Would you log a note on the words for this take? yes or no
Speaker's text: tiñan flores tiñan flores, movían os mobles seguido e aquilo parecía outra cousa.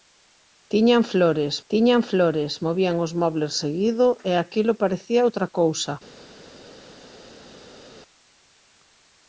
no